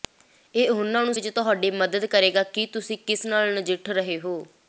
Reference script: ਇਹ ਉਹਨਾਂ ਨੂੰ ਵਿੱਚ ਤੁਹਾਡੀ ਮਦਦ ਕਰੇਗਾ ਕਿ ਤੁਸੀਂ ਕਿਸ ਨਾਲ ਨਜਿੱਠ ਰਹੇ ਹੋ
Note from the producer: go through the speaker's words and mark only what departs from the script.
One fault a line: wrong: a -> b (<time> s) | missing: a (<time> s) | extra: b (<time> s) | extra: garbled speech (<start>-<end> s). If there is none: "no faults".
no faults